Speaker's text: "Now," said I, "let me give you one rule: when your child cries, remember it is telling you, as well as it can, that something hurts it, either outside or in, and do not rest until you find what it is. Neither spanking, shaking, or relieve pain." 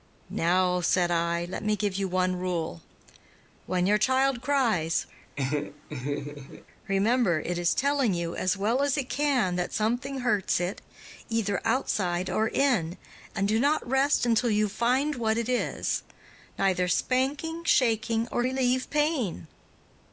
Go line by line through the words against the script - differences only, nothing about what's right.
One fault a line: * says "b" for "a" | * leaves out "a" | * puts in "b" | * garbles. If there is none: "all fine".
all fine